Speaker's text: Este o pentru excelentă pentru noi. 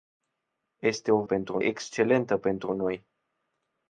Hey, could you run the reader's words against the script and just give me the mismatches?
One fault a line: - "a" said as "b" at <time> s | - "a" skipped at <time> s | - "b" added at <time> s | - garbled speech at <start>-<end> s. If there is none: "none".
none